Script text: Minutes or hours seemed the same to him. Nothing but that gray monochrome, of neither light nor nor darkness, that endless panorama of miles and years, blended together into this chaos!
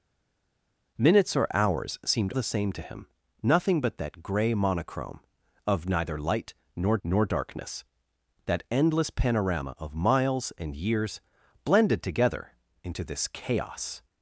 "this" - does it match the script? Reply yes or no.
yes